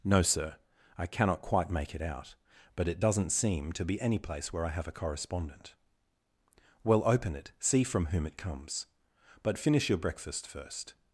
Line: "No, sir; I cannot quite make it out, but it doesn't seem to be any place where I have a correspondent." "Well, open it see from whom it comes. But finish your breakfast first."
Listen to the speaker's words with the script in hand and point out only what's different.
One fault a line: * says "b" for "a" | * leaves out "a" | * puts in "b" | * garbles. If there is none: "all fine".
all fine